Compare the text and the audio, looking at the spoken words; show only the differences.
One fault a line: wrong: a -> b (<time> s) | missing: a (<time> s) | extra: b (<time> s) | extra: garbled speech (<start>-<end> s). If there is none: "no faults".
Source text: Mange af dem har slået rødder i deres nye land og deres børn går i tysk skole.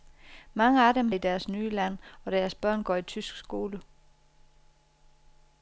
missing: har slået rødder (1.1 s)